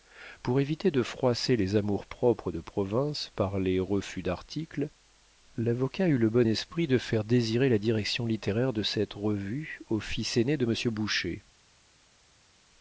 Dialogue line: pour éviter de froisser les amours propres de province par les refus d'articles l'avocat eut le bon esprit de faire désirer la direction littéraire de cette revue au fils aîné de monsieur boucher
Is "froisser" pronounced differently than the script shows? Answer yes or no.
no